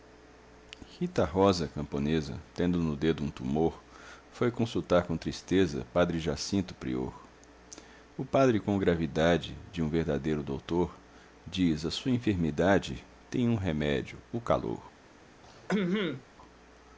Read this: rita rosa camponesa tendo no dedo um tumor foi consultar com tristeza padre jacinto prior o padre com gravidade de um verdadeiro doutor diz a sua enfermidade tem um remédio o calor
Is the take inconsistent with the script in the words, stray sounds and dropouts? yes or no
yes